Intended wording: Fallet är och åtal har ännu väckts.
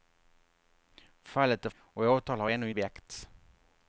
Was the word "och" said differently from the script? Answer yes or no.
no